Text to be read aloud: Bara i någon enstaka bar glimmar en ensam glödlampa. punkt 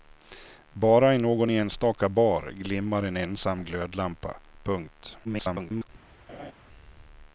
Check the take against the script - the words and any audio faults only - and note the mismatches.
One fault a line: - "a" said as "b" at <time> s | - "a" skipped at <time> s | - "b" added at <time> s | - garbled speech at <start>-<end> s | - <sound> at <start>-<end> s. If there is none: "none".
- garbled speech at 5.2-5.9 s
- laugh at 6.3-6.5 s